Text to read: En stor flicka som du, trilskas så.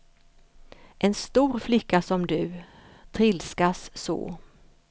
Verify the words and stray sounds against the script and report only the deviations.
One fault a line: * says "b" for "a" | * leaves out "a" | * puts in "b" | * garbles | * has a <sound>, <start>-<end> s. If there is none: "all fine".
all fine